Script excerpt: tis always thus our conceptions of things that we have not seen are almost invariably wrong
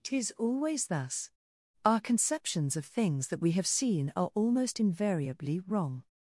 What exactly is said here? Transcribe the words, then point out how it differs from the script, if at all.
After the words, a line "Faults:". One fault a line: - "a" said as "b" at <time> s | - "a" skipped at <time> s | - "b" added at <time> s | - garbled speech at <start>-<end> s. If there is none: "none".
tis always thus our conceptions of things that we have seen are almost invariably wrong
Faults:
- "not" skipped at 3.7 s